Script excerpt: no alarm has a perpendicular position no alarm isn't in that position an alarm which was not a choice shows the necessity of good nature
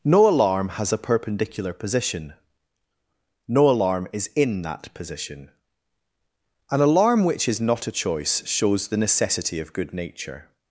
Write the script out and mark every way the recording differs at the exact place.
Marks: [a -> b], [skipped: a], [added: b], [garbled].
no alarm has a perpendicular position no alarm [isn't -> is] in that position an alarm which [was -> is] not a choice shows the necessity of good nature